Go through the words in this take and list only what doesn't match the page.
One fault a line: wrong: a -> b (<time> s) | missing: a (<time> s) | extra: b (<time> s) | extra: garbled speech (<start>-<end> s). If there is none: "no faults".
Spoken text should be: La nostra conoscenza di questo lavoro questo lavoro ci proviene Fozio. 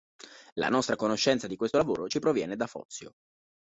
missing: questo lavoro (2.1 s)
extra: da (2.5 s)